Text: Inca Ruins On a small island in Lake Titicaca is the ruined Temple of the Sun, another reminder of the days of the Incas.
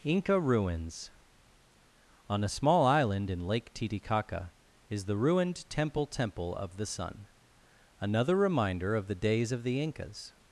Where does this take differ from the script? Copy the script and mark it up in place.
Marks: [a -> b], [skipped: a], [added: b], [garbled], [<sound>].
Inca Ruins On a small island in Lake Titicaca is the ruined Temple [added: Temple] of the Sun, another reminder of the days of the Incas.